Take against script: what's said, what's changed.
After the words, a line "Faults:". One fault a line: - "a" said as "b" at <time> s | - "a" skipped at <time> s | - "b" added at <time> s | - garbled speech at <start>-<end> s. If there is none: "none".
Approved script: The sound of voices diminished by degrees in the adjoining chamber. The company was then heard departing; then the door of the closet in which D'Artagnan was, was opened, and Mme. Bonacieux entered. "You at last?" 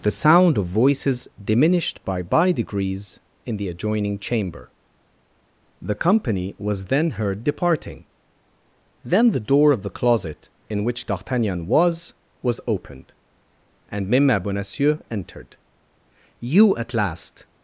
The sound of voices diminished by by degrees in the adjoining chamber. The company was then heard departing; then the door of the closet in which D'Artagnan was, was opened, and Mme. Bonacieux entered. "You at last?"
Faults:
- "by" added at 2.2 s